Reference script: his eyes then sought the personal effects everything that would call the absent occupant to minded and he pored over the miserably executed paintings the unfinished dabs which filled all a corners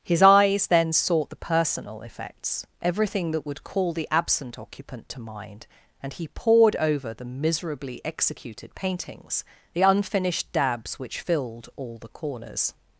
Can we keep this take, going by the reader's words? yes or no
no